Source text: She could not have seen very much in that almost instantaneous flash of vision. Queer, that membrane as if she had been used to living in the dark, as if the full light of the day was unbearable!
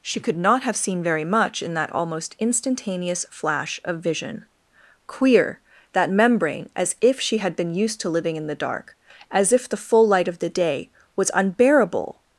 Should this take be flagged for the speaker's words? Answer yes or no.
no